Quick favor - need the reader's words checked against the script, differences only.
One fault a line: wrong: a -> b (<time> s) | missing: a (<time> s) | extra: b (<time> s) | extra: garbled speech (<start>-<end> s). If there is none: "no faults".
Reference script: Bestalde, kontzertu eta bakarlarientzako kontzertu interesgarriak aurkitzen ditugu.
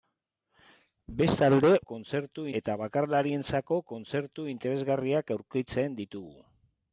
no faults